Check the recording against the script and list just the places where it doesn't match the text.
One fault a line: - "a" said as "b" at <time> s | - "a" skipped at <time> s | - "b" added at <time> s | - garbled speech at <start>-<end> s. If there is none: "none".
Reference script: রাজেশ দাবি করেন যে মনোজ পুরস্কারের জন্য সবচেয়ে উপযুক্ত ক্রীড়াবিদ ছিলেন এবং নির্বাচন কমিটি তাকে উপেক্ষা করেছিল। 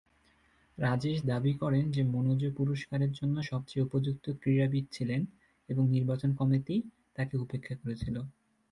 none